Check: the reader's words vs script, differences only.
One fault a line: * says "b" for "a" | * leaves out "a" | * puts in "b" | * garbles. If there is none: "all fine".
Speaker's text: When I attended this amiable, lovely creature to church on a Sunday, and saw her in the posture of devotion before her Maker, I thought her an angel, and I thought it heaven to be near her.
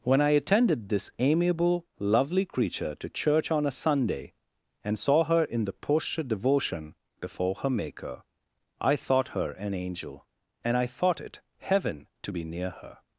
* leaves out "of"